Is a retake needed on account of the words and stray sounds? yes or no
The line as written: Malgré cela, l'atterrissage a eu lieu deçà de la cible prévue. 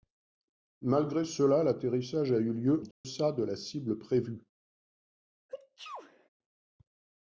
yes